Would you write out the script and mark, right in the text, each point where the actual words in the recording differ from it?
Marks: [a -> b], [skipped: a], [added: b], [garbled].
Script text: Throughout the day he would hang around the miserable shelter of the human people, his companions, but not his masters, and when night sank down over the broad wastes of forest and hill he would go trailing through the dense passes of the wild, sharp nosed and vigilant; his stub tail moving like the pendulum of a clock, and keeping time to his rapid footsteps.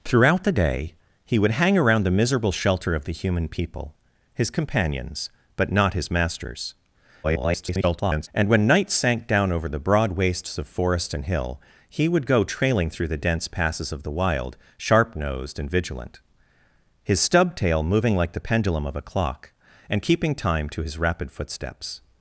Throughout the day he would hang around the miserable shelter of the human people, his companions, but not his masters, [garbled] and when night sank down over the broad wastes of forest and hill he would go trailing through the dense passes of the wild, sharp nosed and vigilant; his stub tail moving like the pendulum of a clock, and keeping time to his rapid footsteps.